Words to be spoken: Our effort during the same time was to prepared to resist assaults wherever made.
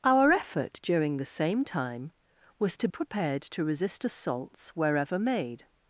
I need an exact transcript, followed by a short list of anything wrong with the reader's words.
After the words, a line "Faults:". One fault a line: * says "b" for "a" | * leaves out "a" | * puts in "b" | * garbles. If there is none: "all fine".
Our effort during the same time was to prepared to resist assaults wherever made.
Faults:
all fine